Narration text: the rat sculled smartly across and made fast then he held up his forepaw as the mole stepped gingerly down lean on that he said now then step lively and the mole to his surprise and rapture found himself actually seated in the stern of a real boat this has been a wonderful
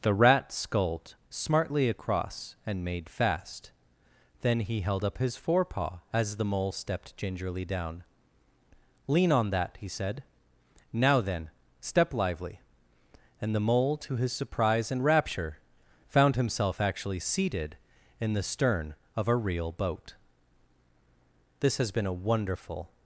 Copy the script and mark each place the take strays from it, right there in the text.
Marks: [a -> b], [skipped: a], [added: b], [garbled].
the rat sculled smartly across and made fast then he held up his forepaw as the mole stepped gingerly down lean on that he said now then step lively and the mole to his surprise and rapture found himself actually seated in the stern of a real boat this has been a wonderful